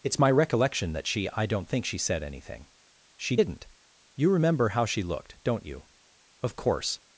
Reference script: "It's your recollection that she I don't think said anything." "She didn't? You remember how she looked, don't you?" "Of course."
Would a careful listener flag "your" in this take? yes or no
yes